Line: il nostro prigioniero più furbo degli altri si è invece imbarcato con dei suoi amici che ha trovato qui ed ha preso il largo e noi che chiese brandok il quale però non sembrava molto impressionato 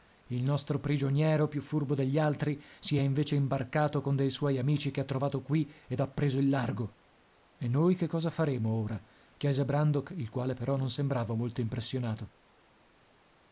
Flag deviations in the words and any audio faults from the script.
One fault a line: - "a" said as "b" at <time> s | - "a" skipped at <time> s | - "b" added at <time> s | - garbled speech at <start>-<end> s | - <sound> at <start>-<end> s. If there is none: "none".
- "cosa faremo ora" added at 8.1 s